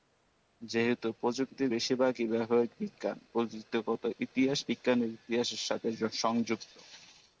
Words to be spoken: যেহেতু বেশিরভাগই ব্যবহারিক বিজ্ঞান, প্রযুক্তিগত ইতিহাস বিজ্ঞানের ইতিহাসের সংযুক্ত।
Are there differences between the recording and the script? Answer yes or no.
yes